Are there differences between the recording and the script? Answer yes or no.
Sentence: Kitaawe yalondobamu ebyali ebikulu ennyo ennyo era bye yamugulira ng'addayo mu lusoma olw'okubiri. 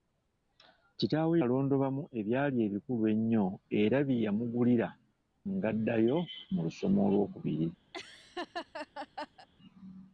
yes